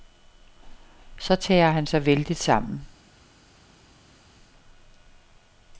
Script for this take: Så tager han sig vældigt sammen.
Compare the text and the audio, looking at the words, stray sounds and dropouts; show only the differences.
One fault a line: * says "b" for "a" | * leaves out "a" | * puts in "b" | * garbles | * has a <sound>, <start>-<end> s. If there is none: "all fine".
all fine